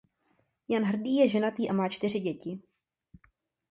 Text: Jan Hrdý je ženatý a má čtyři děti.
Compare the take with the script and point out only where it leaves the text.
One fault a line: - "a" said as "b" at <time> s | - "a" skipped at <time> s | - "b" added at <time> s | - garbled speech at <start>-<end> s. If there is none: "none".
none